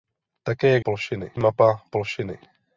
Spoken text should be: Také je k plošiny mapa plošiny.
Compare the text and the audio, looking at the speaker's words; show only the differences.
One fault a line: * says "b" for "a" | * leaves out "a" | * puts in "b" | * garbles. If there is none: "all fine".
all fine